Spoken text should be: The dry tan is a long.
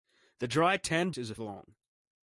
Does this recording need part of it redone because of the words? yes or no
no